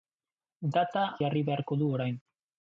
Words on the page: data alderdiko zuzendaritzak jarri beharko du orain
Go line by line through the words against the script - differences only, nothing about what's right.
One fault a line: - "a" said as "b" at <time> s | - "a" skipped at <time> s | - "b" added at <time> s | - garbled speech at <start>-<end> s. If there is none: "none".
- "alderdiko zuzendaritzak" skipped at 1.0 s